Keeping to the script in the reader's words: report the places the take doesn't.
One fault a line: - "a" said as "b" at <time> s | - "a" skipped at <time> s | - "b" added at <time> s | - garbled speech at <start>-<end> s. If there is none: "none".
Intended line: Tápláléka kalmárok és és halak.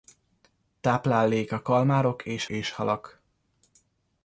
none